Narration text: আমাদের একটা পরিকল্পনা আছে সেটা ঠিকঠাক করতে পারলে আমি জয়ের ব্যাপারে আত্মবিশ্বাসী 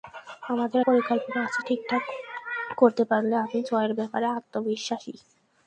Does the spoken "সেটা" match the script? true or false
false